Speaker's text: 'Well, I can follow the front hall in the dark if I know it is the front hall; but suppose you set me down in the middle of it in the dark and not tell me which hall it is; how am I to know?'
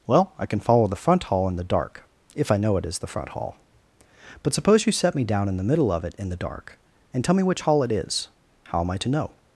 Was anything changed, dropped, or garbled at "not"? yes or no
yes